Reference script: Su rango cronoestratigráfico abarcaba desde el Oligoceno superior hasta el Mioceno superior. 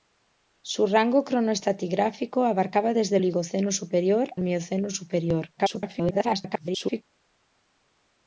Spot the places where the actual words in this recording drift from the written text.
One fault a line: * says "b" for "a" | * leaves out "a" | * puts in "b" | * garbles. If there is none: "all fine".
* leaves out "el"
* leaves out "hasta"
* garbles